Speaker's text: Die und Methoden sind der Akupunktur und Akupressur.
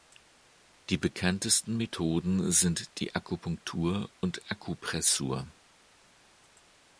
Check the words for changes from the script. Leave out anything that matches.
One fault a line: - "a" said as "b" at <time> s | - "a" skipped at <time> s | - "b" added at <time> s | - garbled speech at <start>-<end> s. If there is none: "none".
- "und" said as "bekanntesten" at 1.0 s
- "der" said as "die" at 3.0 s